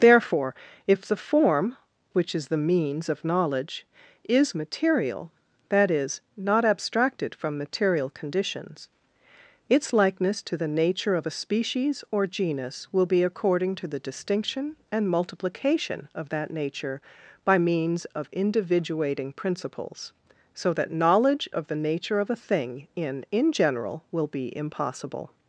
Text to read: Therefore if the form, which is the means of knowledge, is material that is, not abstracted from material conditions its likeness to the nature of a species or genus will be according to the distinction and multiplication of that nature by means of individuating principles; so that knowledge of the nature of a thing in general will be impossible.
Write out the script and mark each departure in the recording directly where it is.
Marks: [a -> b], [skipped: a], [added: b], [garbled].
Therefore if the form, which is the means of knowledge, is material that is, not abstracted from material conditions its likeness to the nature of a species or genus will be according to the distinction and multiplication of that nature by means of individuating principles; so that knowledge of the nature of a thing in [added: in] general will be impossible.